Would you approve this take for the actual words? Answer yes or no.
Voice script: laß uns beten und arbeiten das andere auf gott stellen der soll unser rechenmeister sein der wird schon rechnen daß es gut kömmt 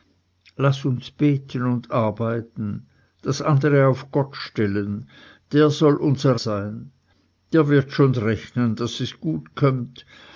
no